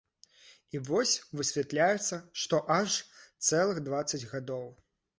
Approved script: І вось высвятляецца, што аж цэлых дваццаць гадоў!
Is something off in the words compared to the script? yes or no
no